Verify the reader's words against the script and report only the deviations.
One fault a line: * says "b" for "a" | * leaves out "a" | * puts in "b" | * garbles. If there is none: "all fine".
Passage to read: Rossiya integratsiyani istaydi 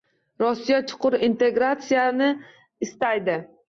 * puts in "chuqur"